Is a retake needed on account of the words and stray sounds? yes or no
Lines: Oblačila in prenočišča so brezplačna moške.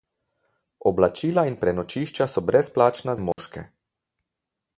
yes